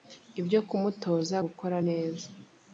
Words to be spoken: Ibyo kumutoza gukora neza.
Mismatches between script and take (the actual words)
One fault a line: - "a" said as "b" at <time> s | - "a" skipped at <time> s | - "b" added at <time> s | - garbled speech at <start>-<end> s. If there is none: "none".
none